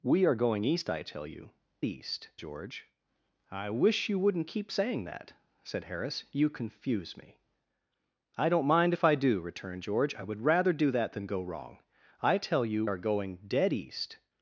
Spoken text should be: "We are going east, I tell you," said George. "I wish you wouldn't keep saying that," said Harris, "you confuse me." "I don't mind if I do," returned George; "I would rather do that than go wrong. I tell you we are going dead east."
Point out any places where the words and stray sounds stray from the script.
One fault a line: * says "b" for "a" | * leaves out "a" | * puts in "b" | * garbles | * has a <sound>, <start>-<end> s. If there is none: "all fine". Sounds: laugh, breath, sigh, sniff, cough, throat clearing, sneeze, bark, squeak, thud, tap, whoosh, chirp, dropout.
* says "east" for "said"
* leaves out "we"